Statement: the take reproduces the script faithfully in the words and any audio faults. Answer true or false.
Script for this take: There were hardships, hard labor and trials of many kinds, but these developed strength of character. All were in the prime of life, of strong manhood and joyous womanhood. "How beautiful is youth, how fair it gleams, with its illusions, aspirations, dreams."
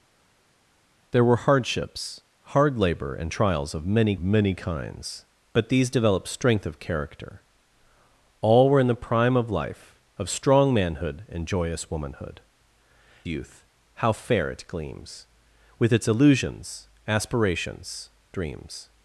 false